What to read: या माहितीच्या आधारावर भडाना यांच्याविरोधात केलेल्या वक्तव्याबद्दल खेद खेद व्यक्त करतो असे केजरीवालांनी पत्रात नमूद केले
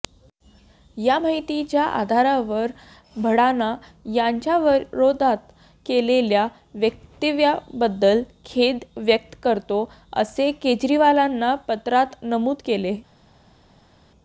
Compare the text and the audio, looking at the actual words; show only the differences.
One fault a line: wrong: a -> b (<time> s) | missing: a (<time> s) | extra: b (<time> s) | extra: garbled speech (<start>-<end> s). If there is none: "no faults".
missing: खेद (8.8 s)